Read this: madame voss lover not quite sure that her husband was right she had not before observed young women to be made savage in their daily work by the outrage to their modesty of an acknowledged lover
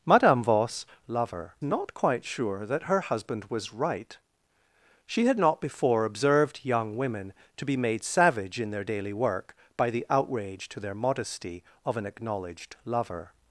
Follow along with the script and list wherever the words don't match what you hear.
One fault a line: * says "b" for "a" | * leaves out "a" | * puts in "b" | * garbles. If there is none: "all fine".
all fine